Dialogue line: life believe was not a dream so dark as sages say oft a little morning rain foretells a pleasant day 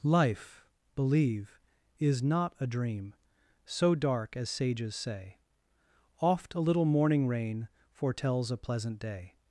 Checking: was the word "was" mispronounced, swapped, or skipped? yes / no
yes